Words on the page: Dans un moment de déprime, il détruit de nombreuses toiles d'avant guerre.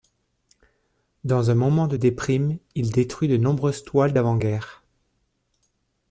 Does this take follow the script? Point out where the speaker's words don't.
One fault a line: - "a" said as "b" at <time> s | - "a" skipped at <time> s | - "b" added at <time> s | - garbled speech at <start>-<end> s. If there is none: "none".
none